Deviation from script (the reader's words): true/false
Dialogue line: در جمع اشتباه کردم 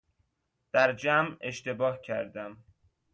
false